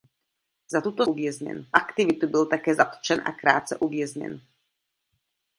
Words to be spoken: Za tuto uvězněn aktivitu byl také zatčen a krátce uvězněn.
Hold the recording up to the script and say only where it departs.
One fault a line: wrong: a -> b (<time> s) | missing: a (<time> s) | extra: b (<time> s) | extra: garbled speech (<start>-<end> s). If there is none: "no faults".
no faults